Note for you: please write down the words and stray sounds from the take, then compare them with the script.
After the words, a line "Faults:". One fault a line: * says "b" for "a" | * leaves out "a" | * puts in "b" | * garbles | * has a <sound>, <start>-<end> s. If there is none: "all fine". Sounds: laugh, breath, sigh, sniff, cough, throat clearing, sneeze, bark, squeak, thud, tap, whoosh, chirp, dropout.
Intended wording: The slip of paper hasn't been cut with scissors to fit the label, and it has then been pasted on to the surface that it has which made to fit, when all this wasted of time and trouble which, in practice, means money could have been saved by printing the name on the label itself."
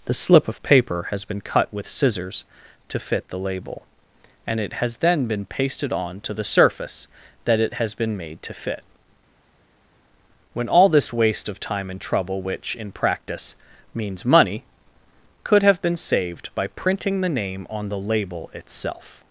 The slip of paper has been cut with scissors to fit the label, and it has then been pasted on to the surface that it has been made to fit, when all this waste of time and trouble which, in practice, means money could have been saved by printing the name on the label itself."
Faults:
* says "has" for "hasn't"
* says "been" for "which"
* says "waste" for "wasted"